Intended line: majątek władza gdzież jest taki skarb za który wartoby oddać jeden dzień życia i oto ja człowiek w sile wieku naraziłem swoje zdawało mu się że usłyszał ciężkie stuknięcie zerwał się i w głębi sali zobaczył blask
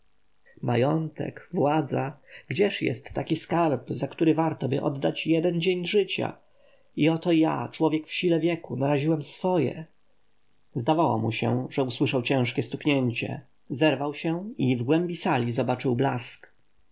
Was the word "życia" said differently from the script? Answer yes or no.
no